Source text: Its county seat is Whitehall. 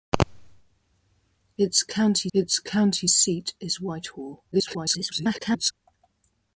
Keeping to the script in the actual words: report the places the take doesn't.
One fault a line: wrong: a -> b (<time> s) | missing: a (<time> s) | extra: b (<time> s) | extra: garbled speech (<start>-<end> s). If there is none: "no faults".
extra: its county (2.3 s)
extra: garbled speech (4.5-5.7 s)